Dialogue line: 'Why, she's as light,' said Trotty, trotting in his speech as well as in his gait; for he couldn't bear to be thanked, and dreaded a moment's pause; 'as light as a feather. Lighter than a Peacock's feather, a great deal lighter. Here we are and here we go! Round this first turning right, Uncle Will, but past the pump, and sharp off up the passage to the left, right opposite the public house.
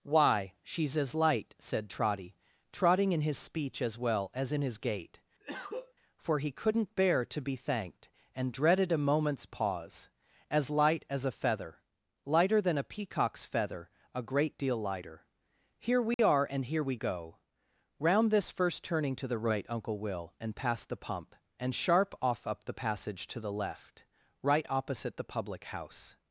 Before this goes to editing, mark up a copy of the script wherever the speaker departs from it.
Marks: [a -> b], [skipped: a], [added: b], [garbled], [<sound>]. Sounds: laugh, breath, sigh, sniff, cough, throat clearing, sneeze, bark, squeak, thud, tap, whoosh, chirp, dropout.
'Why, she's as light,' said Trotty, trotting in his speech as well as in his gait; [cough] for he couldn't bear to be thanked, and dreaded a moment's pause; 'as light as a feather. Lighter than a Peacock's feather, a great deal lighter. Here we [dropout] are and here we go! Round this first turning [added: to the] right, Uncle Will, [but -> and] past the pump, and sharp off up the passage to the left, right opposite the public house.